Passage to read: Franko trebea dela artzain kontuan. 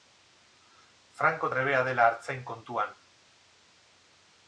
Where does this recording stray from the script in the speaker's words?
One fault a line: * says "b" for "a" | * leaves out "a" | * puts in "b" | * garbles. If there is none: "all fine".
all fine